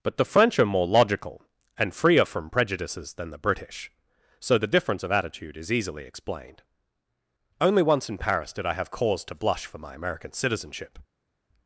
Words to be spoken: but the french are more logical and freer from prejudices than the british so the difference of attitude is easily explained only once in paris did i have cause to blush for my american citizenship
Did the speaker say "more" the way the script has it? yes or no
yes